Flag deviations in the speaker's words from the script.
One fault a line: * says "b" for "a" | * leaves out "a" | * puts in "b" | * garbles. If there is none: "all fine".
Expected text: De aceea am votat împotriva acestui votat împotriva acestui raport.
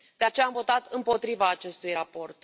* leaves out "votat împotriva acestui"